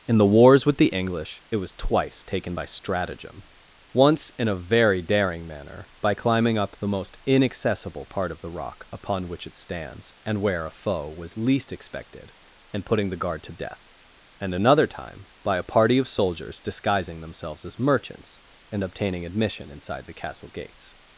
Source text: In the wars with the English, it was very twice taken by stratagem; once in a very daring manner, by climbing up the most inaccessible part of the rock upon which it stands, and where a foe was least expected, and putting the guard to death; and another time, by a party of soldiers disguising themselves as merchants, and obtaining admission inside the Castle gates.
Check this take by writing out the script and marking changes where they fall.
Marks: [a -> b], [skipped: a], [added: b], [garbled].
In the wars with the English, it was [skipped: very] twice taken by stratagem; once in a very daring manner, by climbing up the most inaccessible part of the rock upon which it stands, and where a foe was least expected, and putting the guard to death; and another time, by a party of soldiers disguising themselves as merchants, and obtaining admission inside the Castle gates.